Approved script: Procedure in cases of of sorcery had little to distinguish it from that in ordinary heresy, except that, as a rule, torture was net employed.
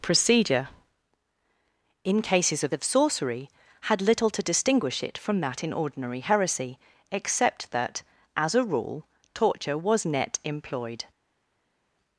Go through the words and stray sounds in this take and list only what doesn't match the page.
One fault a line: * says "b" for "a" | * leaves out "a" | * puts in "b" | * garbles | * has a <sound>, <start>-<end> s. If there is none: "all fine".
all fine